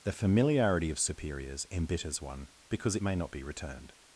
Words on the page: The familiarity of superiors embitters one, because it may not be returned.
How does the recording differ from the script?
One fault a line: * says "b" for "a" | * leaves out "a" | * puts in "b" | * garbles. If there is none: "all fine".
all fine